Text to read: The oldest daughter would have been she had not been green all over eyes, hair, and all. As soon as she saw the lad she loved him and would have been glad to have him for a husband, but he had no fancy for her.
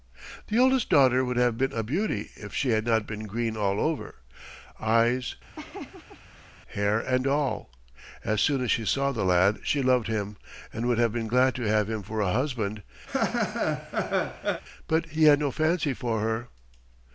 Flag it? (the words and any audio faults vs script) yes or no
yes